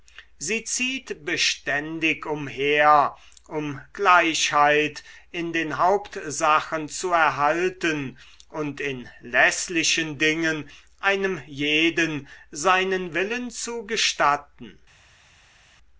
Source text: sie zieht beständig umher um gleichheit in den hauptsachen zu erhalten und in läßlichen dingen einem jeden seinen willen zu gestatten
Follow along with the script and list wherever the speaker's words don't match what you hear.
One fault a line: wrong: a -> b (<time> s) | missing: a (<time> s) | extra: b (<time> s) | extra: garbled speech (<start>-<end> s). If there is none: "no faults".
no faults